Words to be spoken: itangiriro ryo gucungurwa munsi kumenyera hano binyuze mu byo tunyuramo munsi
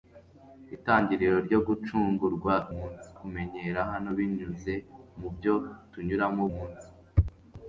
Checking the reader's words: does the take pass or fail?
pass